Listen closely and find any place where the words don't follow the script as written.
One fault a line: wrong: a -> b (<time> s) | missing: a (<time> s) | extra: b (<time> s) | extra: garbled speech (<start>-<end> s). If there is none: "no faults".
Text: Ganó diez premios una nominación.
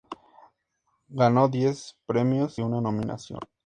no faults